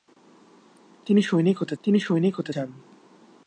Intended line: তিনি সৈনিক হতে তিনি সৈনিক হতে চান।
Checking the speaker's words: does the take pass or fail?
pass